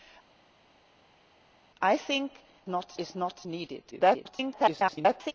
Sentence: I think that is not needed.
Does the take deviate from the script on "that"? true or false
true